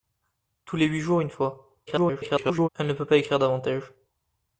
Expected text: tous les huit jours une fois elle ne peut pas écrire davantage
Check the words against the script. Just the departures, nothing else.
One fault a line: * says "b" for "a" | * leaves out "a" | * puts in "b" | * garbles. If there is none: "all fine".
* garbles